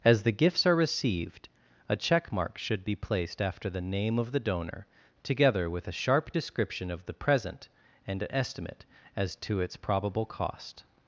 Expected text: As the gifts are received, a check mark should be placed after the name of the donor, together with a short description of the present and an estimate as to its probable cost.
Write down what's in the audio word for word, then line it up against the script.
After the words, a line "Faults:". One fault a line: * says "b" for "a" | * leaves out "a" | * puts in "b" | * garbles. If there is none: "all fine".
As the gifts are received, a check mark should be placed after the name of the donor, together with a sharp description of the present and an estimate as to its probable cost.
Faults:
* says "sharp" for "short"